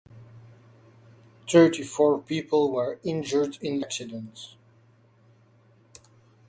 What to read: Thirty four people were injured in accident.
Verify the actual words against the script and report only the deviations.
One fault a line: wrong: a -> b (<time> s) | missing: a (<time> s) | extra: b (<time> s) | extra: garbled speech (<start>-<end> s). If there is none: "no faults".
no faults